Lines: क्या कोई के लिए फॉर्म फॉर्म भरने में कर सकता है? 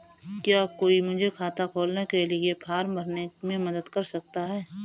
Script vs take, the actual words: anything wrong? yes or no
yes